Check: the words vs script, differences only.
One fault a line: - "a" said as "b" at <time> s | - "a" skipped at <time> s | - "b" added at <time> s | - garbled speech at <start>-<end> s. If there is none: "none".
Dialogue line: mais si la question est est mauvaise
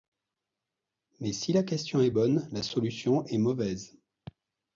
- "bonne la solution" added at 2.1 s